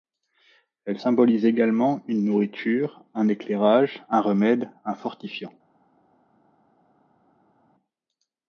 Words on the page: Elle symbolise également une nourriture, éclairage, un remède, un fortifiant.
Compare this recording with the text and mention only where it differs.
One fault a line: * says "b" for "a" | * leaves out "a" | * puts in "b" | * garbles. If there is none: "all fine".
* puts in "un"